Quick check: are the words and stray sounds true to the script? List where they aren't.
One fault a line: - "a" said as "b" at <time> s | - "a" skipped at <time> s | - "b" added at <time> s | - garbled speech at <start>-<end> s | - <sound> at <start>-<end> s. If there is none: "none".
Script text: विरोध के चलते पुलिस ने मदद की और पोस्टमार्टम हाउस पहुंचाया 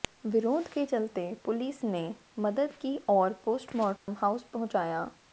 - dropout at 4.0-4.1 s